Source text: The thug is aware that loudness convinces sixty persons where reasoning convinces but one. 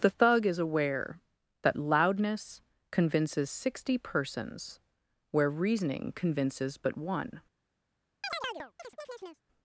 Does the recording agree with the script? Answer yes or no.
yes